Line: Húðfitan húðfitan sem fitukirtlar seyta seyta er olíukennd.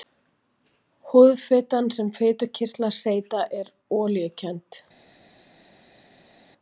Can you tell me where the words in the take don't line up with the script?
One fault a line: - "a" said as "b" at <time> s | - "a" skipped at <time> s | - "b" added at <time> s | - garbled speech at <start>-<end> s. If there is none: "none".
- "húðfitan" skipped at 1.9 s
- "seyta" skipped at 3.5 s